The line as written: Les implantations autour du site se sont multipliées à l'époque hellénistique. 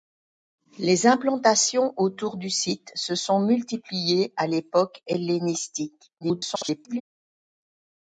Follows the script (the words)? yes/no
no